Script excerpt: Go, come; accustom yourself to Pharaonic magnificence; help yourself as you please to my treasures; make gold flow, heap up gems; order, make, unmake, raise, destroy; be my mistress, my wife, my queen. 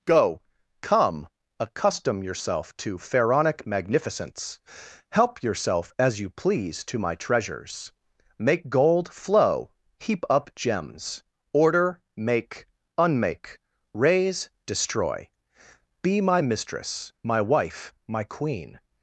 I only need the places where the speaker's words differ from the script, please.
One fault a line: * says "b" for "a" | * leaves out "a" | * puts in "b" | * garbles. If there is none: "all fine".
all fine